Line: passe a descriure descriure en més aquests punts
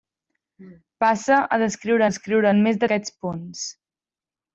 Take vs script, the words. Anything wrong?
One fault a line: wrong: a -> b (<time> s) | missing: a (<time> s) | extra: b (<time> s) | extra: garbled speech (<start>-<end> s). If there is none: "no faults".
no faults